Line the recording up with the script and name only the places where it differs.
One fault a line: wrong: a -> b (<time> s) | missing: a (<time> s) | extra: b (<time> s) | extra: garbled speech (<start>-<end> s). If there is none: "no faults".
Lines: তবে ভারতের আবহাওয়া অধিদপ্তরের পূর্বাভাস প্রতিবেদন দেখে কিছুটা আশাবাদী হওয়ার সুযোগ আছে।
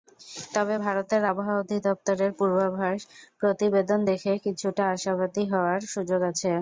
no faults